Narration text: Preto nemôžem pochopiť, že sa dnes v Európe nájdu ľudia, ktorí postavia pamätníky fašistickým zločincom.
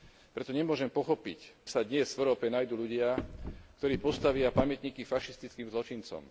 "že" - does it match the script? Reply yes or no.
no